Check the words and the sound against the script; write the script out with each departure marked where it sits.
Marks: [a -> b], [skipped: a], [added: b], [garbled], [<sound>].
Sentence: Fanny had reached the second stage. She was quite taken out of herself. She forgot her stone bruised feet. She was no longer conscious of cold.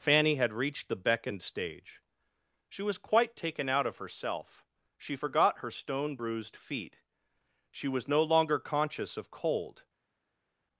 Fanny had reached the [second -> beckoned] stage. She was quite taken out of herself. She forgot her stone bruised feet. She was no longer conscious of cold.